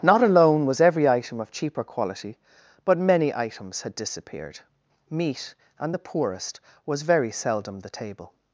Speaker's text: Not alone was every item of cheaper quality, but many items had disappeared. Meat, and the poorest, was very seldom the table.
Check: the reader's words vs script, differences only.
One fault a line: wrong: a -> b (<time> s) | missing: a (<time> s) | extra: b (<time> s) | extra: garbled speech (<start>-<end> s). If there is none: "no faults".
no faults